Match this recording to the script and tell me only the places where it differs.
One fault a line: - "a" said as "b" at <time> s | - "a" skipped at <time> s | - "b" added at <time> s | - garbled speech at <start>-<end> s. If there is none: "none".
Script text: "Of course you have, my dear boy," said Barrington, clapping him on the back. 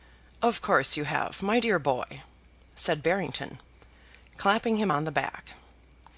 none